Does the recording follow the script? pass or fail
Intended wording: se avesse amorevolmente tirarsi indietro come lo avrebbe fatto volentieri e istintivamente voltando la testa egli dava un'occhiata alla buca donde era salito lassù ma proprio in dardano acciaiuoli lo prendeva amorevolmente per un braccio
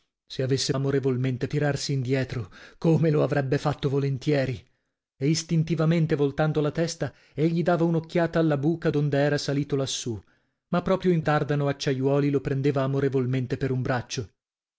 pass